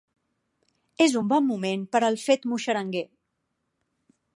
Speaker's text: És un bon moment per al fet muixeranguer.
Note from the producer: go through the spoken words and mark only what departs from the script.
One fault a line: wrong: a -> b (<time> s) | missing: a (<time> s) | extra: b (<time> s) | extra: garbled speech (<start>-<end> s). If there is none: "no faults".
no faults